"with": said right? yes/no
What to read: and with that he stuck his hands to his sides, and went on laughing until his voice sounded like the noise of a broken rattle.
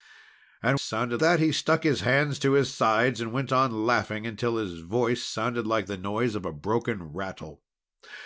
no